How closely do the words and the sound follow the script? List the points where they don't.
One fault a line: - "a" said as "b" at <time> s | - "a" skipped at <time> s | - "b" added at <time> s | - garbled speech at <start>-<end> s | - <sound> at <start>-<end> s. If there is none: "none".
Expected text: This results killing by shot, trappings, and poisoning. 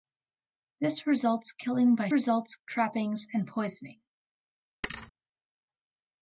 - "shot" said as "results" at 2.1 s
- thud at 4.8-5.1 s